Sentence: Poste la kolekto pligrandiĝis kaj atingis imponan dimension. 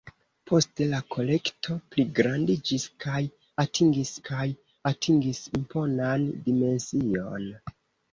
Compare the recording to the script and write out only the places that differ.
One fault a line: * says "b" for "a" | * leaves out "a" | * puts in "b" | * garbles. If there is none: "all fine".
* puts in "kaj atingis"